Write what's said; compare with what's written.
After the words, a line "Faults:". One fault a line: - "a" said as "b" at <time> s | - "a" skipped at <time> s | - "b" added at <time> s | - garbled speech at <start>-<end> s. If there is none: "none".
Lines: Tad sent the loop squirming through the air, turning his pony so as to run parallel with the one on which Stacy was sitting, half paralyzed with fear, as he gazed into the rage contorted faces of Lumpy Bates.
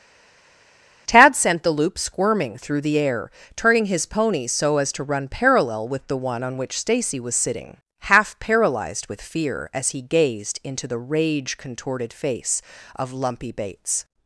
Tad sent the loop squirming through the air, turning his pony so as to run parallel with the one on which Stacy was sitting, half paralyzed with fear, as he gazed into the rage contorted face of Lumpy Bates.
Faults:
- "faces" said as "face" at 12.1 s